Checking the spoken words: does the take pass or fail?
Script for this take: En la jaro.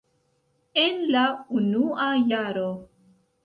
fail